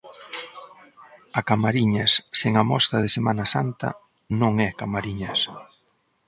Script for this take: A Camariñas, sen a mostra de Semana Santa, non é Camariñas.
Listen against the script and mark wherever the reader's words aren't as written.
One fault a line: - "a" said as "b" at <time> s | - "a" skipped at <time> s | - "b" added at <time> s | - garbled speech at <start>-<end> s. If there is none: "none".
none